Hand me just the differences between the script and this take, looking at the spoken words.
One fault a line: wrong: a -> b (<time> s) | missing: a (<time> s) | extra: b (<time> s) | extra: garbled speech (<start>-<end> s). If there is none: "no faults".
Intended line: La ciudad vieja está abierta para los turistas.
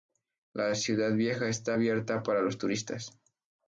no faults